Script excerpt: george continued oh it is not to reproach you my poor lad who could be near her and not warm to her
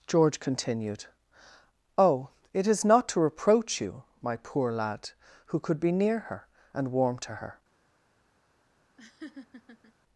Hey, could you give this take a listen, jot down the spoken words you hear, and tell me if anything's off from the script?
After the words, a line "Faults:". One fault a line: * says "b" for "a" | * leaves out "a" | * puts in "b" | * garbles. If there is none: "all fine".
george continued oh it is not to reproach you my poor lad who could be near her and warm to her
Faults:
* leaves out "not"